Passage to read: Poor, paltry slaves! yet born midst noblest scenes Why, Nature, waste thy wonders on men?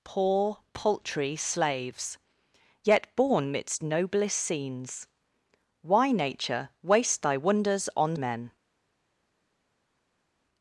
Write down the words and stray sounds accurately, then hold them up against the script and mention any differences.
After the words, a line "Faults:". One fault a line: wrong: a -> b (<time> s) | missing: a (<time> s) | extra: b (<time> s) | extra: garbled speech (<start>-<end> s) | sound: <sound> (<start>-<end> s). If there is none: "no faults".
Poor, paltry slaves! yet born midst noblest scenes Why, Nature, waste thy wonders on men?
Faults:
no faults